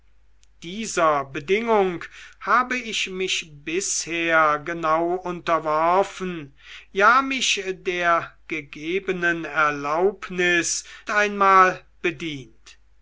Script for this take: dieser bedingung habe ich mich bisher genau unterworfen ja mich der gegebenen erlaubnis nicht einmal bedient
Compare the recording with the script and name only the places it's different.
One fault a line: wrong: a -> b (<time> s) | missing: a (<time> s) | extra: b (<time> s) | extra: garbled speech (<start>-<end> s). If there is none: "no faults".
missing: nicht (10.8 s)